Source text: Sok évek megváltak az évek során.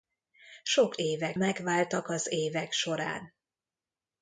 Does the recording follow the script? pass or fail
pass